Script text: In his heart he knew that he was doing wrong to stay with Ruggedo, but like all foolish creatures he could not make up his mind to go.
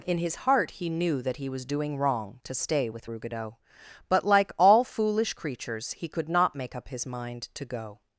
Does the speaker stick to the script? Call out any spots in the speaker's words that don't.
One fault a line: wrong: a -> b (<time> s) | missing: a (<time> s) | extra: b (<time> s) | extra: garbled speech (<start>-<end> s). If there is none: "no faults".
no faults